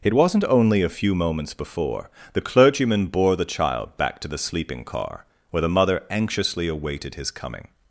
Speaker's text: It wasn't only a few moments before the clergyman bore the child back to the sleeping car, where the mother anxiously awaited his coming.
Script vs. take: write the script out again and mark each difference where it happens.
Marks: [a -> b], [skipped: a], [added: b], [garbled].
It wasn't only a few moments before the clergyman bore the child back to the sleeping car, where the mother anxiously awaited his coming.